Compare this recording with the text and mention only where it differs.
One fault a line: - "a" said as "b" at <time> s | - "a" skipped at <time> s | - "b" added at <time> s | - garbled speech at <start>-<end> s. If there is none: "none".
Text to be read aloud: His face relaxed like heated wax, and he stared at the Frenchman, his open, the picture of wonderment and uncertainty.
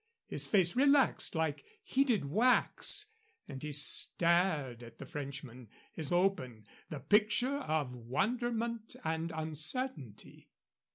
none